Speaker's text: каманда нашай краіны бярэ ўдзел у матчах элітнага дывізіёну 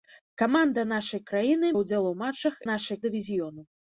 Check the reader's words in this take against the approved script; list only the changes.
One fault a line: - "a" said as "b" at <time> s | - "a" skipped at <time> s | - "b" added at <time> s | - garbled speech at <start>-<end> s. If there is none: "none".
- "бярэ" skipped at 1.7 s
- "элітнага" said as "нашай" at 2.7 s